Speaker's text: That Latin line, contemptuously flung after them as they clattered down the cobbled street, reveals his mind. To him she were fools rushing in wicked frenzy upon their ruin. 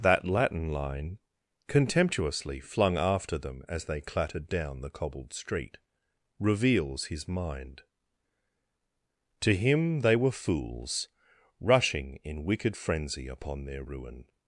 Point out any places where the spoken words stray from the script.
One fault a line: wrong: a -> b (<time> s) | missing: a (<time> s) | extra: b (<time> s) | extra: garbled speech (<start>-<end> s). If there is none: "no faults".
wrong: she -> they (10.0 s)